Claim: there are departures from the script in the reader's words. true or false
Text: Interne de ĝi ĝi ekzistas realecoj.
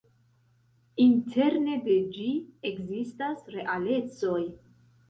true